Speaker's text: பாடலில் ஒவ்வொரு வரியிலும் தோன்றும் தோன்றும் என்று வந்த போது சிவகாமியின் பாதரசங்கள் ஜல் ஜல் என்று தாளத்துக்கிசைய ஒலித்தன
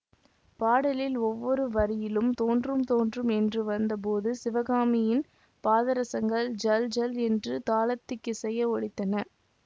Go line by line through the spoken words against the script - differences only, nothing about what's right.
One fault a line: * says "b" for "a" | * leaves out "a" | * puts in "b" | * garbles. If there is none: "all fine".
all fine